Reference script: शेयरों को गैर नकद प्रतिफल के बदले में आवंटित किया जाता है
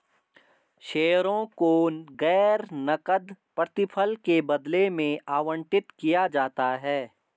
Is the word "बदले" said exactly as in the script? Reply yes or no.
yes